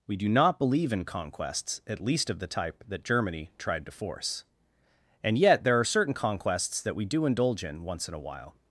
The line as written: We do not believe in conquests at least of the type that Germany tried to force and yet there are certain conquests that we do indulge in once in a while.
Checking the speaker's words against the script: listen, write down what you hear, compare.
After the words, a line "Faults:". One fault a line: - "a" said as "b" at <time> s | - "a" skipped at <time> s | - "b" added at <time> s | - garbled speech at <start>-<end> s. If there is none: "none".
We do not believe in conquests at least of the type that Germany tried to force and yet there are certain conquests that we do indulge in once in a while.
Faults:
none